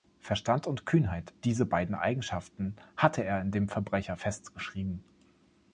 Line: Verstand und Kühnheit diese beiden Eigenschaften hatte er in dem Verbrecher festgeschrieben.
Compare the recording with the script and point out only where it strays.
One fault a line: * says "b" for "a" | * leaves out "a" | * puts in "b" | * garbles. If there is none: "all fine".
all fine